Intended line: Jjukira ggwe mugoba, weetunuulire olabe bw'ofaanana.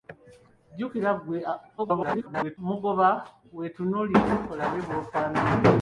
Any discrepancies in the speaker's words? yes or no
yes